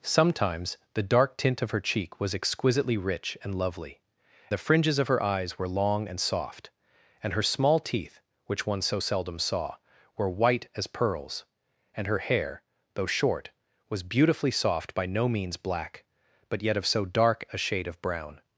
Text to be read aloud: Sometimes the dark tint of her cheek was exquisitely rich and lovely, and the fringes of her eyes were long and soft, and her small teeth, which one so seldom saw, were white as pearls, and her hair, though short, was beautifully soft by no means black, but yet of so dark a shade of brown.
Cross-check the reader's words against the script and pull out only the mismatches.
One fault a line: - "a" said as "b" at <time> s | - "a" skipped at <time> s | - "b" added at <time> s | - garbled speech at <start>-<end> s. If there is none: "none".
- "and" skipped at 4.0 s